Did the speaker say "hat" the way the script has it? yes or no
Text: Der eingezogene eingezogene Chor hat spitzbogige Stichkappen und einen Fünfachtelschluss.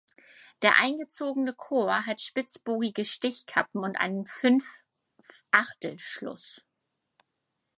yes